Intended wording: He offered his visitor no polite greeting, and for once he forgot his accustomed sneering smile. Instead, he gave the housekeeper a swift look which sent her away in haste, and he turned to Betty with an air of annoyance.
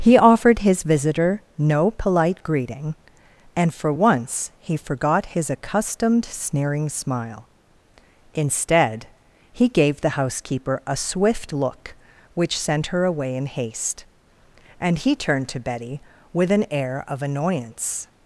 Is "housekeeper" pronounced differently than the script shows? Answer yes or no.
no